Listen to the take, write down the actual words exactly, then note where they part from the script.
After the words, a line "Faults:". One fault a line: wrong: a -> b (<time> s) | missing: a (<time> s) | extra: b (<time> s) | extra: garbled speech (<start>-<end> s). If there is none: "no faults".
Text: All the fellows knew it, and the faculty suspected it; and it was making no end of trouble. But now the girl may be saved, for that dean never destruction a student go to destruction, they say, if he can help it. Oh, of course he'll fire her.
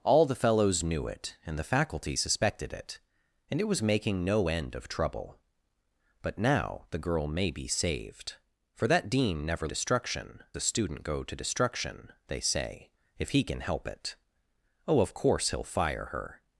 All the fellows knew it, and the faculty suspected it; and it was making no end of trouble. But now the girl may be saved, for that dean never destruction a student go to destruction, they say, if he can help it. Oh, of course he'll fire her.
Faults:
no faults